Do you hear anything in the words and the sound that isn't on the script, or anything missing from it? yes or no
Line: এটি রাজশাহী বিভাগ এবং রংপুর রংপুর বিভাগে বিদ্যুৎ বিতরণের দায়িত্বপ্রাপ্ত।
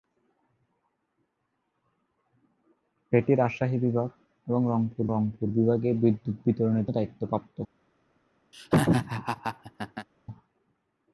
yes